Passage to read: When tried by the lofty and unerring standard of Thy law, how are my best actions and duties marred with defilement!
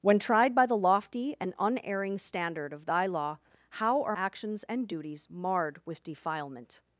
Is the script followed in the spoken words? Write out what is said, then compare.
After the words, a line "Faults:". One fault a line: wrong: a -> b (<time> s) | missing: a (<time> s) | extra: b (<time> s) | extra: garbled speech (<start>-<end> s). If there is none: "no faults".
When tried by the lofty and unerring standard of Thy law, how are actions and duties marred with defilement!
Faults:
missing: my best (4.2 s)